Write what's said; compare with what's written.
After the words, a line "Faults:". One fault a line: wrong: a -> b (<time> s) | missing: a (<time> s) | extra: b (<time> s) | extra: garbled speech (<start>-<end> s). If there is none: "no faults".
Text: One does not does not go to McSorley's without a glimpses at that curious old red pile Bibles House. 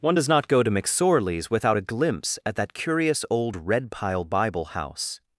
One does not go to McSorley's without a glimpse at that curious old red pile Bible House.
Faults:
missing: does not (0.5 s)
wrong: glimpses -> glimpse (1.8 s)
wrong: Bibles -> Bible (4.2 s)